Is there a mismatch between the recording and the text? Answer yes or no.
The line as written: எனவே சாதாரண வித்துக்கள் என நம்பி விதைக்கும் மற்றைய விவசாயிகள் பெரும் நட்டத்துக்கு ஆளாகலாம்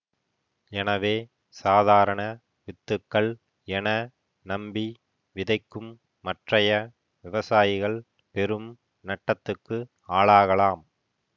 no